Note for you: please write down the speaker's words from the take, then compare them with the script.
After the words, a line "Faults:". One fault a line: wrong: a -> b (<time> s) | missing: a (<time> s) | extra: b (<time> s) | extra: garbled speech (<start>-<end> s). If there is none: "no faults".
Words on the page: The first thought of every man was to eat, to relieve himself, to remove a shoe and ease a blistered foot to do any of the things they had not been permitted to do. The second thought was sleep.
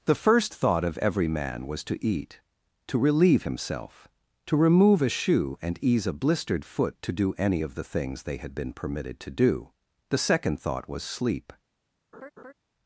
The first thought of every man was to eat, to relieve himself, to remove a shoe and ease a blistered foot to do any of the things they had been permitted to do. The second thought was sleep.
Faults:
missing: not (8.5 s)